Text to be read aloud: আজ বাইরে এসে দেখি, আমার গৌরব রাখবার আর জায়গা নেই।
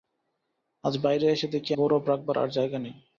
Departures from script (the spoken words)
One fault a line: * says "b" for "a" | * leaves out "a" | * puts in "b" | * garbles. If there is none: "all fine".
* leaves out "আমার"